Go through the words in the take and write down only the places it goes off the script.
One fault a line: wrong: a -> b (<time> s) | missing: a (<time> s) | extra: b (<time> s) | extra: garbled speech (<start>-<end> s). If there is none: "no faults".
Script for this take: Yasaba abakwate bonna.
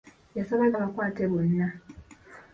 no faults